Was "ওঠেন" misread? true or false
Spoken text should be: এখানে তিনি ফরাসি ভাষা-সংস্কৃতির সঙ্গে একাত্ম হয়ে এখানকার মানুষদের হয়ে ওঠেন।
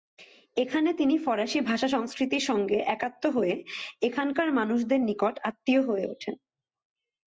false